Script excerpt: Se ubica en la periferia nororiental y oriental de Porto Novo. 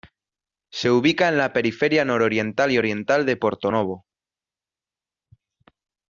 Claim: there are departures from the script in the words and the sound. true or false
false